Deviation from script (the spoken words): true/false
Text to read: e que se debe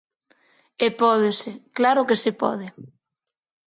true